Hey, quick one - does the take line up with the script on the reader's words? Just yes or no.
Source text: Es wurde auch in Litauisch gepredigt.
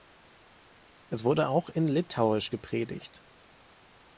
yes